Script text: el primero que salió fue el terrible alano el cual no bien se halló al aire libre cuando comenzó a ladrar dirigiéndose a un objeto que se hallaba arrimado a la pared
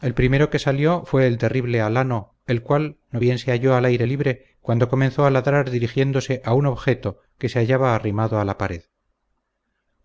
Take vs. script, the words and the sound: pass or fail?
pass